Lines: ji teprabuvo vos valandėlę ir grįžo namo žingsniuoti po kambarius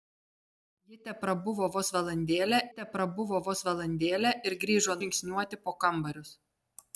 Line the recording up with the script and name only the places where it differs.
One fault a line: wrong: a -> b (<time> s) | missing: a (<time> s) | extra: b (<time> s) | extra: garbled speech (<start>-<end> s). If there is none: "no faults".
extra: teprabuvo vos valandėlę (2.8 s)
missing: namo (5.0 s)